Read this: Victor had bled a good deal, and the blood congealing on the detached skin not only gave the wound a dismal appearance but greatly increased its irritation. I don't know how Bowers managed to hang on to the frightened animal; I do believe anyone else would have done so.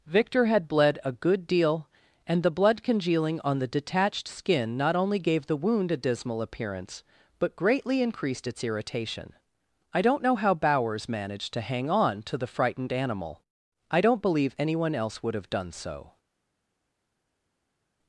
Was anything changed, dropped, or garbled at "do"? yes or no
yes